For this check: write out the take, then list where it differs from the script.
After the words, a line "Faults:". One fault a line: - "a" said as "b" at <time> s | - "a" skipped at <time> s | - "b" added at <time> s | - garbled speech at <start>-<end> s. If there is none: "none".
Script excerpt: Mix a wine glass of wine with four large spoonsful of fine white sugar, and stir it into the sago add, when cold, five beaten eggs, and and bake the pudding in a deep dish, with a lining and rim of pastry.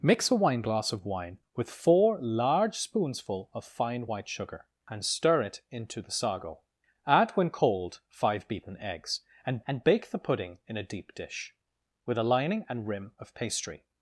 Mix a wine glass of wine with four large spoonsful of fine white sugar, and stir it into the sago add, when cold, five beaten eggs, and and bake the pudding in a deep dish, with a lining and rim of pastry.
Faults:
none